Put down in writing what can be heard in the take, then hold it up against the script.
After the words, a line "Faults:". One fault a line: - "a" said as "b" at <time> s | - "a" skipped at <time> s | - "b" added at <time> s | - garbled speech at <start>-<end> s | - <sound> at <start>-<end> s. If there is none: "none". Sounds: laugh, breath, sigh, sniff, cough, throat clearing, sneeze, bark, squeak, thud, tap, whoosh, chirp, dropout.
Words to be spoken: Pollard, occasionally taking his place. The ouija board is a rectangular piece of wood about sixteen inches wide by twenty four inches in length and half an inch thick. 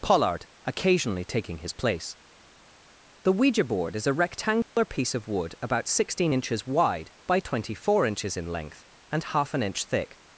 Pollard, occasionally taking his place. The ouija board is a rectangular piece of wood about sixteen inches wide by twenty four inches in length and half an inch thick.
Faults:
- dropout at 4.6-4.8 s